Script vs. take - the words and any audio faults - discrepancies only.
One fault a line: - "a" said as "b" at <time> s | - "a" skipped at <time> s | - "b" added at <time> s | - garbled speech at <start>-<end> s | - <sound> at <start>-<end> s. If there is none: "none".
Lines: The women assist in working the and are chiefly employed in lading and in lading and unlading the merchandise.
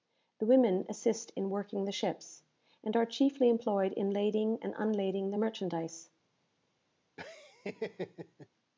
- "ships" added at 1.9 s
- "in lading and" skipped at 4.7 s
- laugh at 7.2-8.5 s